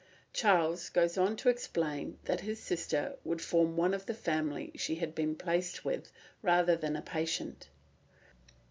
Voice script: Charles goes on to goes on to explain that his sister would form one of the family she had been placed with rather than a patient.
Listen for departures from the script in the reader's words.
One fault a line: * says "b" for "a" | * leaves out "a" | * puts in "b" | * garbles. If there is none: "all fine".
* leaves out "goes on to"